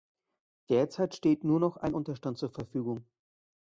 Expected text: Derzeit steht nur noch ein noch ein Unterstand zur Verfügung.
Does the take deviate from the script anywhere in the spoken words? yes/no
yes